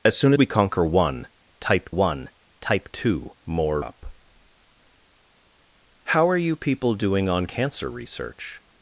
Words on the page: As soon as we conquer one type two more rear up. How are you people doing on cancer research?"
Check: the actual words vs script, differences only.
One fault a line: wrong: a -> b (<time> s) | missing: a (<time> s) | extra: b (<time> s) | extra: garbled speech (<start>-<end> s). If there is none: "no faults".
missing: as (0.3 s)
extra: one type (1.9 s)
missing: rear (3.8 s)